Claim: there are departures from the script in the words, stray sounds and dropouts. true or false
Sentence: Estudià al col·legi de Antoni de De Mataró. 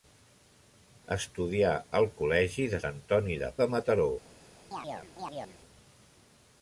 true